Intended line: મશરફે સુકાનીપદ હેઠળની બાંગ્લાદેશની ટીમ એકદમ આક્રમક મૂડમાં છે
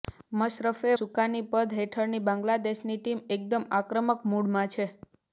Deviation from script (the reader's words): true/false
false